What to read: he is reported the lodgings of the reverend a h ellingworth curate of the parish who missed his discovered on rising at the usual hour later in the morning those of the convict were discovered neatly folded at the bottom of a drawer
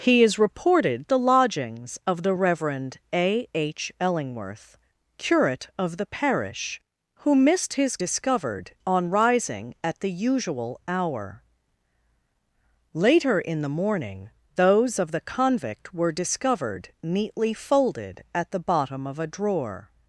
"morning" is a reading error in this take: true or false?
false